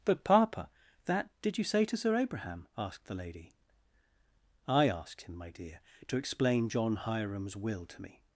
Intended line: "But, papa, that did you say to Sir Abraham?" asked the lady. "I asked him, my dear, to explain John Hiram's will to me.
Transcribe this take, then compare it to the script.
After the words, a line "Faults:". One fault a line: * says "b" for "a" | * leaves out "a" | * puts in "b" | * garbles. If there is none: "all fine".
"But, papa, that did you say to Sir Abraham?" asked the lady. "I asked him, my dear, to explain John Hiram's will to me.
Faults:
all fine